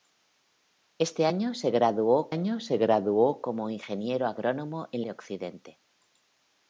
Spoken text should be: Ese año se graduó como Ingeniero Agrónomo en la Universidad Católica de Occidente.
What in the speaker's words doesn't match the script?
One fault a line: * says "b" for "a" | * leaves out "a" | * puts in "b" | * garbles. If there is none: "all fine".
* puts in "año se graduó"
* leaves out "la Universidad Católica"